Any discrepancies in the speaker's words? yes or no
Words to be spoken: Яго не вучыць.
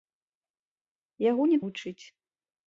no